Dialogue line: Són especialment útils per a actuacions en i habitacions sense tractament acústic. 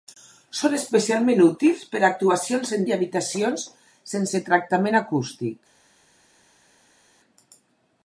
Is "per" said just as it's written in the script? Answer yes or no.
yes